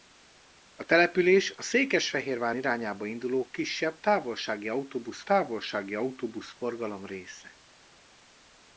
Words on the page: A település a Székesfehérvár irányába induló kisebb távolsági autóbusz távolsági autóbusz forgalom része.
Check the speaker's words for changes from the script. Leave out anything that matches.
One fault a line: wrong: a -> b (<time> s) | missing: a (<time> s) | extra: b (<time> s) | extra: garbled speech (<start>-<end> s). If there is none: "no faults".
no faults